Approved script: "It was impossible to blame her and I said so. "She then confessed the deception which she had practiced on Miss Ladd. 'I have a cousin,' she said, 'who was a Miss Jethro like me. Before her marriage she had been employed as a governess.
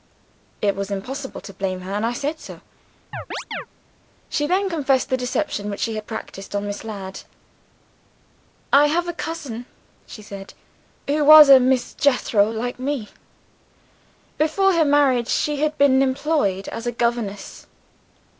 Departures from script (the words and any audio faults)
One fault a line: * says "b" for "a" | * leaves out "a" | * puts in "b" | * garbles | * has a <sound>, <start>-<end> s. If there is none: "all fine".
* has a chirp, 3.1-3.7 s